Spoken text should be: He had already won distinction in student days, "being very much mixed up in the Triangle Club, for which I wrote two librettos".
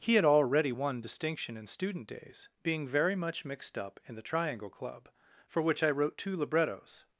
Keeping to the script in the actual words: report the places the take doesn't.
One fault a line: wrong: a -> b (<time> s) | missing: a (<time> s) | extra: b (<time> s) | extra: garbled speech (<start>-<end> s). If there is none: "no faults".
no faults